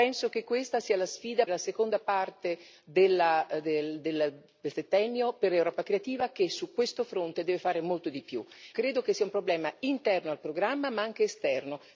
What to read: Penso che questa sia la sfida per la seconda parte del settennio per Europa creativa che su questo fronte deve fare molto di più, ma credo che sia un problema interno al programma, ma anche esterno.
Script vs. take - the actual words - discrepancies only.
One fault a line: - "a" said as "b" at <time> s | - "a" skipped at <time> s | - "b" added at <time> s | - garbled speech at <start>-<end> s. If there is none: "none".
- "per" skipped at 1.4 s
- "ma" skipped at 8.4 s